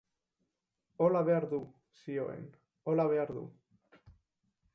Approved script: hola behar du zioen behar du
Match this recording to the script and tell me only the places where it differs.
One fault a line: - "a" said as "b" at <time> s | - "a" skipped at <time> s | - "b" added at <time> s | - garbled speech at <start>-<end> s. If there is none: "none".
- "hola" added at 2.8 s